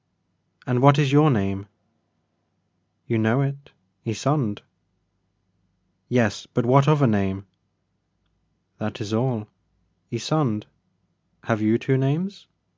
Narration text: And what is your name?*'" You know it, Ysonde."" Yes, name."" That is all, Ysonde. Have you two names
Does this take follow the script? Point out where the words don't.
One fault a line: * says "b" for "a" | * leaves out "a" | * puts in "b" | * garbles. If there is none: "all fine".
* puts in "but what other"